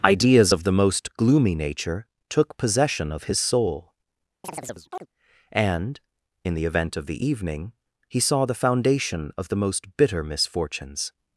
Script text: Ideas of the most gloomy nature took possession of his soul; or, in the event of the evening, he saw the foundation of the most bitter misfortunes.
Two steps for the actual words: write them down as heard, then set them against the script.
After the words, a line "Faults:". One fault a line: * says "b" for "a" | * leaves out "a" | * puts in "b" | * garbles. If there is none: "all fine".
Ideas of the most gloomy nature took possession of his soul; and, in the event of the evening, he saw the foundation of the most bitter misfortunes.
Faults:
* says "and" for "or"